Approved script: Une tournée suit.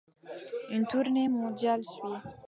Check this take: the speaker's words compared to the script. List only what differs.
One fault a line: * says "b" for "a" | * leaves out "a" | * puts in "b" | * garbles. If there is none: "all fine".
* puts in "mondiale"